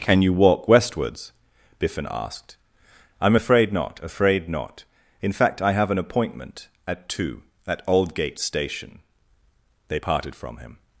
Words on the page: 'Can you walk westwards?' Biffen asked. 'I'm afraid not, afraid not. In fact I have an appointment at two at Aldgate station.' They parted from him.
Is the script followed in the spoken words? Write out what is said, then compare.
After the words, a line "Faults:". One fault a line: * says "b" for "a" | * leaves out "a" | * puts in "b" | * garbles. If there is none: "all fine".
'Can you walk westwards?' Biffen asked. 'I'm afraid not, afraid not. In fact I have an appointment at two at Aldgate station.' They parted from him.
Faults:
all fine